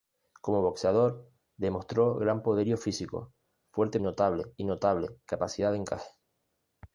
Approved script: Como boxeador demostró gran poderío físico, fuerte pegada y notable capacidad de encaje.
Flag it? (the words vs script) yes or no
yes